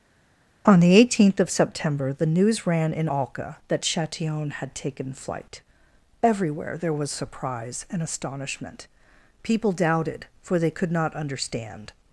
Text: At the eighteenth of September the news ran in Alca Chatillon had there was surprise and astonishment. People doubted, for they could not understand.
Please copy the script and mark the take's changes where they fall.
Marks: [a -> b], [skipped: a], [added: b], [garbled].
[At -> On] the eighteenth of September the news ran in Alca [added: that] Chatillon had [added: taken flight Everywhere] there was surprise and astonishment. People doubted, for they could not understand.